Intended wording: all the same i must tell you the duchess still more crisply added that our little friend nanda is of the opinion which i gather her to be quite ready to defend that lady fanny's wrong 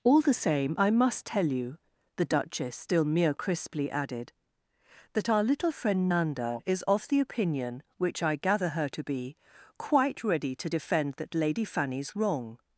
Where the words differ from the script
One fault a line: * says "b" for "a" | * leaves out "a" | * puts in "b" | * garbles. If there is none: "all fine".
* says "mere" for "more"